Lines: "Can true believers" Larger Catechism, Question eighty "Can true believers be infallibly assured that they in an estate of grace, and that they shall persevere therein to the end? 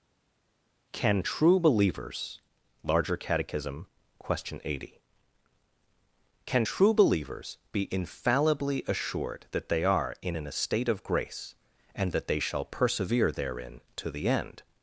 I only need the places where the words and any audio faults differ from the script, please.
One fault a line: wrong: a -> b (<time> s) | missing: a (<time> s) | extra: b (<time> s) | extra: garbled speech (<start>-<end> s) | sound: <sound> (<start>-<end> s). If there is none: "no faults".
extra: are (9.8 s)